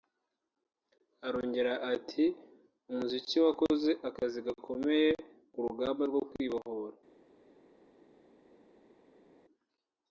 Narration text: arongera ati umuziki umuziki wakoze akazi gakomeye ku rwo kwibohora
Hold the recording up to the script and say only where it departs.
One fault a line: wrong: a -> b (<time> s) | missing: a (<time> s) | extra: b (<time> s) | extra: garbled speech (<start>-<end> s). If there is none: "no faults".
missing: umuziki (3.4 s)
extra: rugamba (5.7 s)